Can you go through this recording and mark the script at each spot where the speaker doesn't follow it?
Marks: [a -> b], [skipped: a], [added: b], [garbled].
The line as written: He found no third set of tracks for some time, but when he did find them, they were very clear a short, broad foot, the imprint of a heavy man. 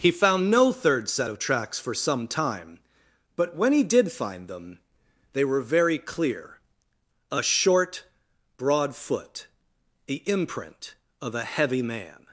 He found no third set of tracks for some time, but when he did find them, they were very clear a short, broad foot, the imprint of a heavy man.